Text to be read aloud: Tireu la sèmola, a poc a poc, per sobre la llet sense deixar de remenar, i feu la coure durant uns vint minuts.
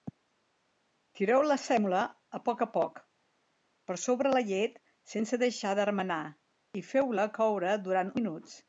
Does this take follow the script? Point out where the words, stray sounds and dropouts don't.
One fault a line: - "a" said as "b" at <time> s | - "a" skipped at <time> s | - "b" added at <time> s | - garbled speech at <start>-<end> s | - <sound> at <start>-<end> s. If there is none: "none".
- "uns vint" skipped at 8.2 s